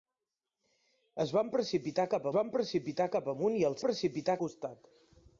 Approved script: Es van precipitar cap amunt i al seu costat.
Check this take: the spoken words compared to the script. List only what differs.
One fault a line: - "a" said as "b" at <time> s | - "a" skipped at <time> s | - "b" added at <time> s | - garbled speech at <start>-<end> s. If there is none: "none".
- "van precipitar cap" added at 2.4 s
- "seu" said as "precipitar" at 3.9 s